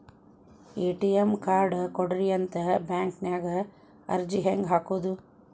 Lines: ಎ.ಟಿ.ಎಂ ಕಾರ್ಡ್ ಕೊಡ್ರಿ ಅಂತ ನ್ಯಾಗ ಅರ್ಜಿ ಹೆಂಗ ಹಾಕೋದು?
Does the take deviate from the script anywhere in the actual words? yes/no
yes